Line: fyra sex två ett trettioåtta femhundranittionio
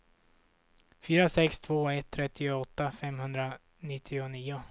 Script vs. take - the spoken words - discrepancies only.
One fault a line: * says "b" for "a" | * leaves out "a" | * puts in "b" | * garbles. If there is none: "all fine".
all fine